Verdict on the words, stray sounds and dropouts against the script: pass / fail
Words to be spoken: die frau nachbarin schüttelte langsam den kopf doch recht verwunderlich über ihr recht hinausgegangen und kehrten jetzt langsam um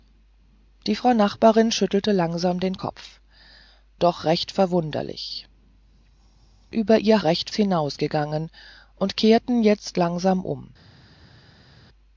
pass